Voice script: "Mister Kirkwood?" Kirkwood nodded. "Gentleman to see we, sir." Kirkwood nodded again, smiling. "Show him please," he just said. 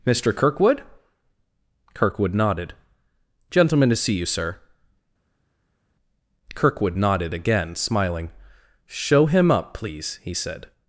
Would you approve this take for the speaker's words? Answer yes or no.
no